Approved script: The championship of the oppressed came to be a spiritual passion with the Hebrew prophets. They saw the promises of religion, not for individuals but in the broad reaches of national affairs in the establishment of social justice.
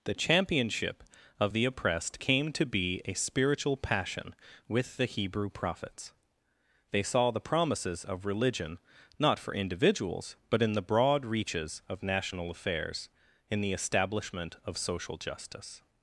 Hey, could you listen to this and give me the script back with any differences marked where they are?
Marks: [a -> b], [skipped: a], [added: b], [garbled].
The championship of the oppressed came to be a spiritual passion with the Hebrew prophets. They saw the promises of religion, not for individuals but in the broad reaches of national affairs in the establishment of social justice.